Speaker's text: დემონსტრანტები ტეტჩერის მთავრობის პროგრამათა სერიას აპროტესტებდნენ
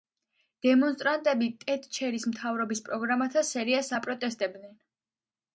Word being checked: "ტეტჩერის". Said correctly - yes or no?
yes